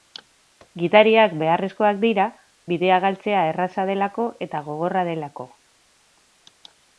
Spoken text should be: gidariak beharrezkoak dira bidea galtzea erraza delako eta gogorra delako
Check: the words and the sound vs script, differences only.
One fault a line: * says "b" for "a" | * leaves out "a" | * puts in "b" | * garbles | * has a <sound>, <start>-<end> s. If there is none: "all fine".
all fine